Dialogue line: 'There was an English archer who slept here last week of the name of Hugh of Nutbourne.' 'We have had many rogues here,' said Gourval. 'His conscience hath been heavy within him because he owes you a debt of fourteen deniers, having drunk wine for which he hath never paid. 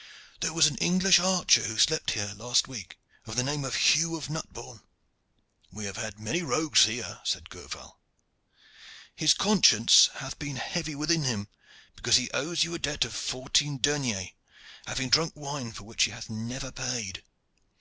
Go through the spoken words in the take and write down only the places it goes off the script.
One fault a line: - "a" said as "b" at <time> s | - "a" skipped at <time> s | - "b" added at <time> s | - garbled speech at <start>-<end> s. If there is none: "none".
none